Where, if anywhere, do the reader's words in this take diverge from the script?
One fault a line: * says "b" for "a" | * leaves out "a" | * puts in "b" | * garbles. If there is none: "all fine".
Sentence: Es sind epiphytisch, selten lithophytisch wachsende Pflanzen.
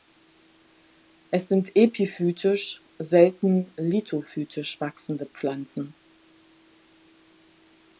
all fine